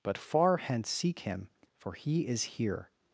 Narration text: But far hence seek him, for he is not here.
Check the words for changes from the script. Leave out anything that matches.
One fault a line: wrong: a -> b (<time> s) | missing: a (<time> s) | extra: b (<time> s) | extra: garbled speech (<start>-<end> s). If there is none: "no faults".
missing: not (2.4 s)